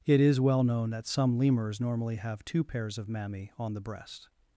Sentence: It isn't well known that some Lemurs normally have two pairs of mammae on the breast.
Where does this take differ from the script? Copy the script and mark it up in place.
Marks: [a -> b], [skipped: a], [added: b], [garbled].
It [isn't -> is] well known that some Lemurs normally have two pairs of mammae on the breast.